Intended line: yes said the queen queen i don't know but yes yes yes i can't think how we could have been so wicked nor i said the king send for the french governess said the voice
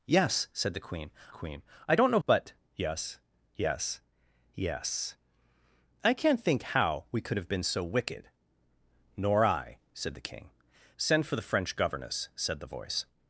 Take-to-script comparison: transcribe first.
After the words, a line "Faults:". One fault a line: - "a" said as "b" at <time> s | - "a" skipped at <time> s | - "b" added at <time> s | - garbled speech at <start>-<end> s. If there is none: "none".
yes said the queen queen i don't know but yes yes yes i can't think how we could have been so wicked nor i said the king send for the french governess said the voice
Faults:
none